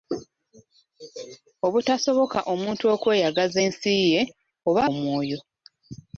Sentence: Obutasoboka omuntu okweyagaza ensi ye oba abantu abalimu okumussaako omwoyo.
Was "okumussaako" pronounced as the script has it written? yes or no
no